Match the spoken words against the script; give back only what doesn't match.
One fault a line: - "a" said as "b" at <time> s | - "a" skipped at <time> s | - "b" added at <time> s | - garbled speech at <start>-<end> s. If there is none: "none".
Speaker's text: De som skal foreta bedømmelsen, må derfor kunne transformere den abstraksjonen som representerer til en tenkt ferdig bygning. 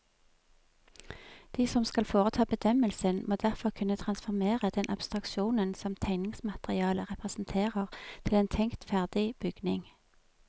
- "tegningsmaterialet" added at 6.0 s